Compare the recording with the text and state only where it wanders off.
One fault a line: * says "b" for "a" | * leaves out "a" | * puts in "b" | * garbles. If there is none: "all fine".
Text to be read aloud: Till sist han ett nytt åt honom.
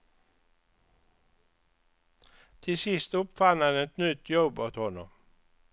* puts in "uppfann"
* puts in "jobb"